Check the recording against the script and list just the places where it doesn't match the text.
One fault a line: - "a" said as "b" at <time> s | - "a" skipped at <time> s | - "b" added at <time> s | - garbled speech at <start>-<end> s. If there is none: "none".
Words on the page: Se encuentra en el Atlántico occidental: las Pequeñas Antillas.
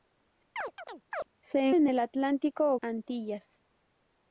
- "encuentra" skipped at 1.7 s
- "occidental las Pequeñas" skipped at 2.8 s